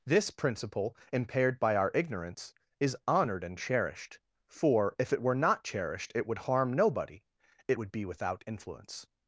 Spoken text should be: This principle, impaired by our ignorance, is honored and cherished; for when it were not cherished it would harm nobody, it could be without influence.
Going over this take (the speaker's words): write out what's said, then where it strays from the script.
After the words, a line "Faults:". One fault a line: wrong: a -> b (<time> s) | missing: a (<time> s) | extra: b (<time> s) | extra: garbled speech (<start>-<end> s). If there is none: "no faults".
This principle, impaired by our ignorance, is honored and cherished; for if it were not cherished it would harm nobody, it would be without influence.
Faults:
wrong: when -> if (5.0 s)
wrong: could -> would (7.8 s)